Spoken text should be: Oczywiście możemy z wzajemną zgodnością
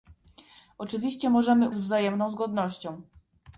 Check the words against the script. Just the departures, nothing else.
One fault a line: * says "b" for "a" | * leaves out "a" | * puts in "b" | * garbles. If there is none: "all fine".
all fine